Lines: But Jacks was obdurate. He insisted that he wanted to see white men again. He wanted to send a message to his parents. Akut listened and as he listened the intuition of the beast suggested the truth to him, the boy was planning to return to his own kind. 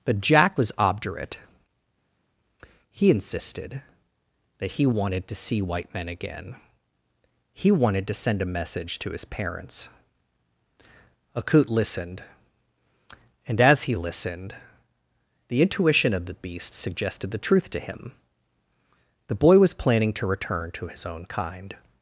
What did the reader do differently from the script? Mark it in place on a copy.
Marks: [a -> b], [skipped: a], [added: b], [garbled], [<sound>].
But [Jacks -> Jack] was obdurate. He insisted that he wanted to see white men again. He wanted to send a message to his parents. Akut listened and as he listened the intuition of the beast suggested the truth to him, the boy was planning to return to his own kind.